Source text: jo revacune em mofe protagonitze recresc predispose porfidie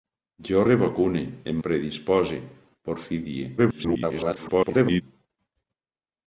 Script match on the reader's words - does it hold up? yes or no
no